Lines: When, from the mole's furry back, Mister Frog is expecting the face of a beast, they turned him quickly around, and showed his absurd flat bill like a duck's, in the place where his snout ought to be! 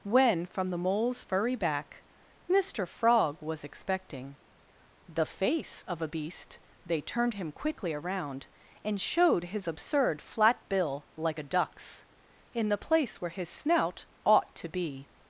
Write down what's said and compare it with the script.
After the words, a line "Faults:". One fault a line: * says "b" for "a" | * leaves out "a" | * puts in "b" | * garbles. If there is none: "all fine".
When, from the mole's furry back, Mister Frog was expecting the face of a beast, they turned him quickly around, and showed his absurd flat bill like a duck's, in the place where his snout ought to be!
Faults:
* says "was" for "is"